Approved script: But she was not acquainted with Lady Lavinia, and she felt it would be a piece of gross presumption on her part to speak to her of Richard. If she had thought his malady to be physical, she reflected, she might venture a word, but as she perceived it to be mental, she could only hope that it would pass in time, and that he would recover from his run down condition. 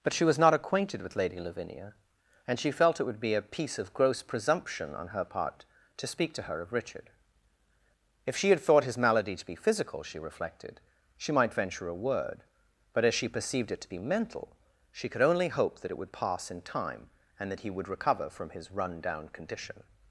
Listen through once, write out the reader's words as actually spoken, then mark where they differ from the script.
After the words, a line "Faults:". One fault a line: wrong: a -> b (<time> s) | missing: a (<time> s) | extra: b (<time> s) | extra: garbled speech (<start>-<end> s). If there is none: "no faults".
But she was not acquainted with Lady Lavinia, and she felt it would be a piece of gross presumption on her part to speak to her of Richard. If she had thought his malady to be physical, she reflected, she might venture a word, but as she perceived it to be mental, she could only hope that it would pass in time, and that he would recover from his run down condition.
Faults:
no faults